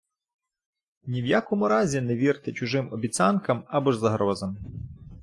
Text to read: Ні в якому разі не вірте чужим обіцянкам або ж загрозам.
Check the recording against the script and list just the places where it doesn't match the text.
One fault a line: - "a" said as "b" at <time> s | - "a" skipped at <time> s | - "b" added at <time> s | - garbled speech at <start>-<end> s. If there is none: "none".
none